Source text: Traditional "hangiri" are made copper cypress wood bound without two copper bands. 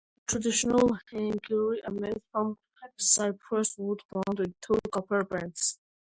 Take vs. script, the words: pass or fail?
fail